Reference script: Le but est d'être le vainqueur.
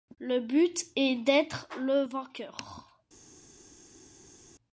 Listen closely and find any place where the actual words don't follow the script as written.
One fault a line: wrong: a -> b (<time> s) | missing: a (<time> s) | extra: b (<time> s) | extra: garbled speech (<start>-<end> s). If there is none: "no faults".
no faults